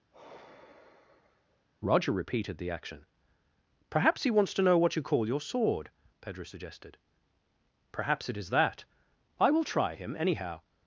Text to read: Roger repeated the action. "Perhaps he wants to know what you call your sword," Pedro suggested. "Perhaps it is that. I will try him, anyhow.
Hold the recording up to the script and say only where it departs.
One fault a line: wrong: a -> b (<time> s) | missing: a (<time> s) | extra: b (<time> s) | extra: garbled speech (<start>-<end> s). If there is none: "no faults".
no faults